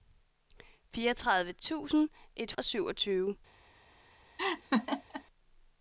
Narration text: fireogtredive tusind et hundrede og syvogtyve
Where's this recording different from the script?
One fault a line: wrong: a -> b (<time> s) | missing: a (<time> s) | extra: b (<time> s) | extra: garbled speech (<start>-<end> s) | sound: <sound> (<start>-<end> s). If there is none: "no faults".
missing: hundrede (2.5 s)
sound: laugh (4.4-5.2 s)